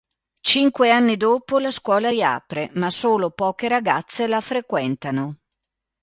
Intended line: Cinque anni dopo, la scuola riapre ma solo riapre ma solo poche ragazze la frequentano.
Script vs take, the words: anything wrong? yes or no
yes